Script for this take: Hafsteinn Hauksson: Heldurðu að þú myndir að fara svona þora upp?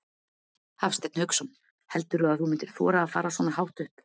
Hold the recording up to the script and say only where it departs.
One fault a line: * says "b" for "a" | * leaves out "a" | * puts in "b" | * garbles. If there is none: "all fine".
* puts in "þora"
* says "hátt" for "þora"